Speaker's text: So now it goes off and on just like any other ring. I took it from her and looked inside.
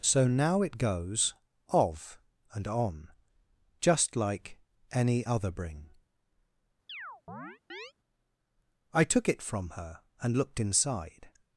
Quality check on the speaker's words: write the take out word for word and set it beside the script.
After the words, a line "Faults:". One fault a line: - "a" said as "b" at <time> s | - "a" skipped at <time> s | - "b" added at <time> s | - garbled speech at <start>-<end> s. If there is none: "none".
So now it goes of and on just like any other bring. I took it from her and looked inside.
Faults:
- "off" said as "of" at 1.7 s
- "ring" said as "bring" at 5.5 s